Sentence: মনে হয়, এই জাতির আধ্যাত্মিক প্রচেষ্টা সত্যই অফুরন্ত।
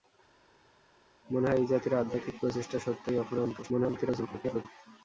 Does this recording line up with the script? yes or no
no